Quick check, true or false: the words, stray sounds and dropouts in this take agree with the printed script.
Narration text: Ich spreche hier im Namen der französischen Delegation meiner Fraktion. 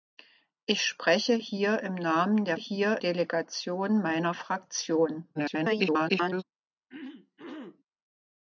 false